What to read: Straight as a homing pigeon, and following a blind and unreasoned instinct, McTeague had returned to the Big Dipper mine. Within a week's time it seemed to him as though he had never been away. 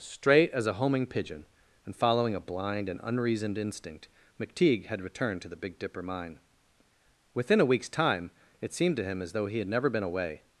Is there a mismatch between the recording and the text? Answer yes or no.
no